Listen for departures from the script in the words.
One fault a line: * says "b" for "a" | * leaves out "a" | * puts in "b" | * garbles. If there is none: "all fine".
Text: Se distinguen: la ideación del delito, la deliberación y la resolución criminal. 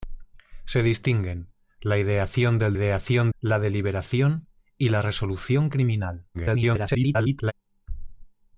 * says "ideación" for "delito"
* garbles